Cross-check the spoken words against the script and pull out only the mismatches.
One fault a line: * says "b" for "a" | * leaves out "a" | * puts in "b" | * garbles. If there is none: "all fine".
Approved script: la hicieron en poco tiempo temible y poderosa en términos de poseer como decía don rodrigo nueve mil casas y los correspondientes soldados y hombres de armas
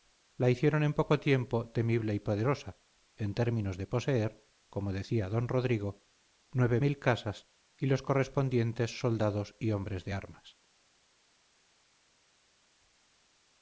all fine